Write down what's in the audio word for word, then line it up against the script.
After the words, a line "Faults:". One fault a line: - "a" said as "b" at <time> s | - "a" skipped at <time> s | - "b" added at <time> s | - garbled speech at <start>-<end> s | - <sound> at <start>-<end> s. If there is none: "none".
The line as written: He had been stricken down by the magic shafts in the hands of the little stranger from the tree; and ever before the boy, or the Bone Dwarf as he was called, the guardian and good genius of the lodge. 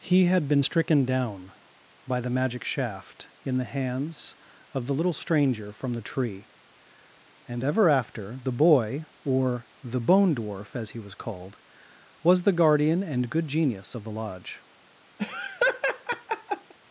He had been stricken down by the magic shaft in the hands of the little stranger from the tree; and ever after the boy, or the Bone Dwarf as he was called, was the guardian and good genius of the lodge.
Faults:
- "shafts" said as "shaft" at 2.6 s
- "before" said as "after" at 7.9 s
- "was" added at 12.2 s
- laugh at 15.2-16.7 s